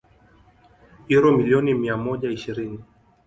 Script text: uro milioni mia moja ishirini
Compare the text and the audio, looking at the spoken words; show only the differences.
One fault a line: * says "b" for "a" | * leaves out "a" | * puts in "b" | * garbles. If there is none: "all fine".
all fine